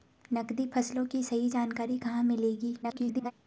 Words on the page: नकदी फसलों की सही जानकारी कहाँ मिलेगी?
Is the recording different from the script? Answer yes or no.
yes